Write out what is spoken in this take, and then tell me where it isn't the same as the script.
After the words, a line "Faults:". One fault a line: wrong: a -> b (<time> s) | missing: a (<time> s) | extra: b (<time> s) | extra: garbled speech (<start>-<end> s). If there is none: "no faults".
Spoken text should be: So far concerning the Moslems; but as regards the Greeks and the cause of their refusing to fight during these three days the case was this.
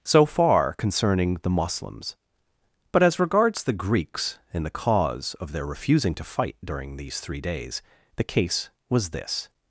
So far concerning the Moslems; but as regards the Greeks and the cause of their refusing to fight during these three days the case was this.
Faults:
no faults